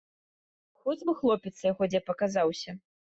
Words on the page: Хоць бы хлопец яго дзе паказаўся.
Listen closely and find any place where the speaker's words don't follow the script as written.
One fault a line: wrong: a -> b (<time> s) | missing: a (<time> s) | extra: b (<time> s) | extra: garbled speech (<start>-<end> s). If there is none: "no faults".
no faults